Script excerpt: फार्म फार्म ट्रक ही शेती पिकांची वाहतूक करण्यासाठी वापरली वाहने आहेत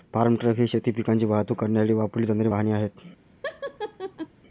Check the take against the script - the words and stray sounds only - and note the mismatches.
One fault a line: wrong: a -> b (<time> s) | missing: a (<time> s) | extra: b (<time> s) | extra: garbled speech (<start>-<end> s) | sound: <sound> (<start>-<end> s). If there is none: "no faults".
missing: फार्म (0.3 s)
extra: जाणारी (2.3 s)
sound: laugh (3.4-4.3 s)